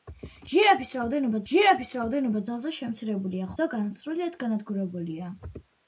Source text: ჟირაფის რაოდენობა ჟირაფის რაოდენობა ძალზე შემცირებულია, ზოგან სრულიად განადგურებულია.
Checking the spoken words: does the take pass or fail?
pass